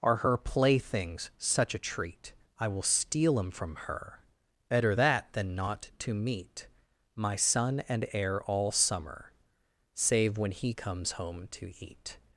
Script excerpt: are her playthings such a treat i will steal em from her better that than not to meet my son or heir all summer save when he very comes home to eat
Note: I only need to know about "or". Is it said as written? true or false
false